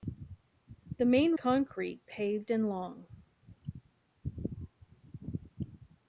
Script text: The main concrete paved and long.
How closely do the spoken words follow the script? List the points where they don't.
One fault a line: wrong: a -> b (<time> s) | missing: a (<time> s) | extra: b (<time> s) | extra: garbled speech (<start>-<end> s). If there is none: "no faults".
no faults